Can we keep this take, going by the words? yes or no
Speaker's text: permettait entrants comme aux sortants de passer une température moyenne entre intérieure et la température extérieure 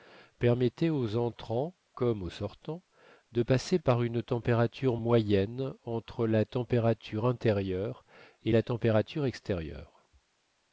no